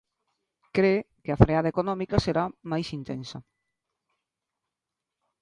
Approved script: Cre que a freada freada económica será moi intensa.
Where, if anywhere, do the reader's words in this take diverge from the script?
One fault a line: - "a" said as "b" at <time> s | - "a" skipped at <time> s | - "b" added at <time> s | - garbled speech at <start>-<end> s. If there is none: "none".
- "freada" skipped at 1.7 s
- "moi" said as "máis" at 2.7 s